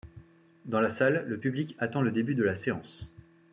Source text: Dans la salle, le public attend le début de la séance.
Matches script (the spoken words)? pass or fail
pass